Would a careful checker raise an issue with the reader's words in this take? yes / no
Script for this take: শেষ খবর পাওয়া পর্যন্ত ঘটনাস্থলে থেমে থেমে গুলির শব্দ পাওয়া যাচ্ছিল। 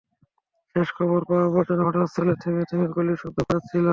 no